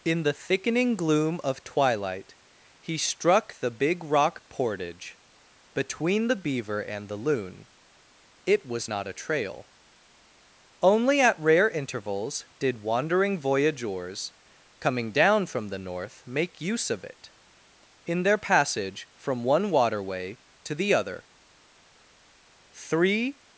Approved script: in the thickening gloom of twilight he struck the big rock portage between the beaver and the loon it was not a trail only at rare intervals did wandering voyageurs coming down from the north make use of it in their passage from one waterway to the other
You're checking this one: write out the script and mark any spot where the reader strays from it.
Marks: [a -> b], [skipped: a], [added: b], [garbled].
in the thickening gloom of twilight he struck the big rock portage between the beaver and the loon it was not a trail only at rare intervals did wandering voyageurs coming down from the north make use of it in their passage from one waterway to the other [added: three]